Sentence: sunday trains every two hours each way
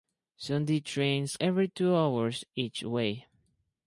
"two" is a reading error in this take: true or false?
false